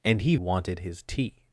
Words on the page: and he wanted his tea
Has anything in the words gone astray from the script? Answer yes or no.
no